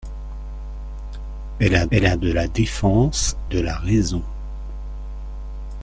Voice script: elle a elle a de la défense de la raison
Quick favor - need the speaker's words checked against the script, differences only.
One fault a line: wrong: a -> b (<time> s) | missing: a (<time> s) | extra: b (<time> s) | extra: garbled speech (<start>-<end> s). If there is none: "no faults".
no faults